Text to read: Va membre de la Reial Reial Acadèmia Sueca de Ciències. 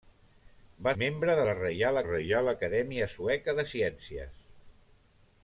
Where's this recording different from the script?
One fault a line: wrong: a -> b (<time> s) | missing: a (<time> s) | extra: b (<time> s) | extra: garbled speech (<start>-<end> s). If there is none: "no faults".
no faults